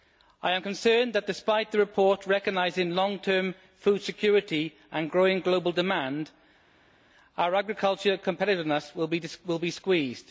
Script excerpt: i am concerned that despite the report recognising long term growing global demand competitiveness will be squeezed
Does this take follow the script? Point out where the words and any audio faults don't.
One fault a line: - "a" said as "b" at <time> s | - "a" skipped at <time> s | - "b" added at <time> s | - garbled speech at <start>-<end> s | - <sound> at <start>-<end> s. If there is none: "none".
- "food security and" added at 3.8 s
- "our agricultural" added at 7.4 s